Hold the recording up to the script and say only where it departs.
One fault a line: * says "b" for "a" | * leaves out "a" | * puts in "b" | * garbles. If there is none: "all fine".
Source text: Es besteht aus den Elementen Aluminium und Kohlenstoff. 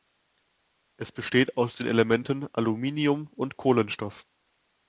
all fine